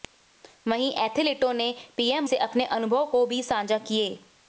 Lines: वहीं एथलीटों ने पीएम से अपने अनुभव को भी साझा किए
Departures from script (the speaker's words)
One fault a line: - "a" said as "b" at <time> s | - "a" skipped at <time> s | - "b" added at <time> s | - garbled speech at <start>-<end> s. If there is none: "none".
none